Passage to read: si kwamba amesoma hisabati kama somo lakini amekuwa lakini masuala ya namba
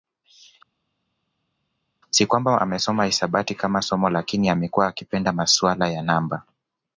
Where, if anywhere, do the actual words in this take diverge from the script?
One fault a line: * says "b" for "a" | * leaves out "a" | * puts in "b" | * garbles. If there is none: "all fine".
* says "akipenda" for "lakini"